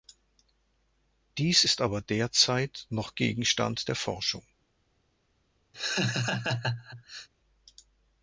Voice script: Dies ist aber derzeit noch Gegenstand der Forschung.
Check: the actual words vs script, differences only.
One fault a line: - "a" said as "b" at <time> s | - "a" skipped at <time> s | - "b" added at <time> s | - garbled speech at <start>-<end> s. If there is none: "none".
none